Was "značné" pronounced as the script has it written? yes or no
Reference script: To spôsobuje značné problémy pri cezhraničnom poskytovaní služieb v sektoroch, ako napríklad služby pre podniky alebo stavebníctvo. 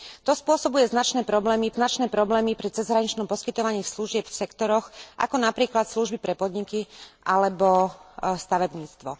yes